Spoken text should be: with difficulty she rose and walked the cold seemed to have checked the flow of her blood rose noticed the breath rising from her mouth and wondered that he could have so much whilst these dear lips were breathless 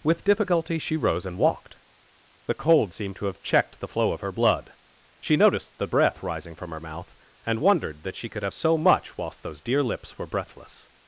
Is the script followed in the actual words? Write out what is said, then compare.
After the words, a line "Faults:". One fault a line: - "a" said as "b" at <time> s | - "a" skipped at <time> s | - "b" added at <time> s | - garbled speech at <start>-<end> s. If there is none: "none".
with difficulty she rose and walked the cold seemed to have checked the flow of her blood she noticed the breath rising from her mouth and wondered that she could have so much whilst those dear lips were breathless
Faults:
- "rose" said as "she" at 5.2 s
- "he" said as "she" at 8.1 s
- "these" said as "those" at 9.4 s